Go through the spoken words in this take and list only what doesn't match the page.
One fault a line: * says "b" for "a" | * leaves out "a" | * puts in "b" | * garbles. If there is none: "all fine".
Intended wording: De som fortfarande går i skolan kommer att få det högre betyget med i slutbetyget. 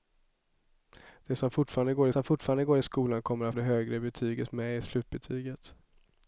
* puts in "som fortfarande går"
* leaves out "få"